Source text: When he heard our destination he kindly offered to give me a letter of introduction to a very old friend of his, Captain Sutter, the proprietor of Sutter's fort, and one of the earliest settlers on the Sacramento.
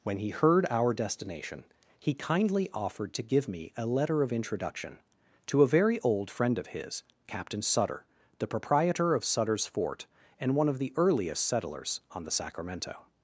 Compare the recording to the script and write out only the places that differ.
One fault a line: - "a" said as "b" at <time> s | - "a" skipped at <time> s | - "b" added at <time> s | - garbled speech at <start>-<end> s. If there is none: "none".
none